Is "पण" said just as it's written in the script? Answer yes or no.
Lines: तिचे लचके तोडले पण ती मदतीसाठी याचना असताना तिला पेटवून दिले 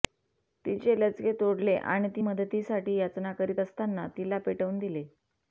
no